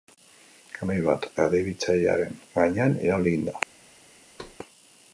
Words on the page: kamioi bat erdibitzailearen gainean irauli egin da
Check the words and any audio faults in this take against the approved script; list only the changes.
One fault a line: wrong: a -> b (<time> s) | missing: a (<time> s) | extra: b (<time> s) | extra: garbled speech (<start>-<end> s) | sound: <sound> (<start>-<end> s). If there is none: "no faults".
sound: thud (4.4-4.6 s)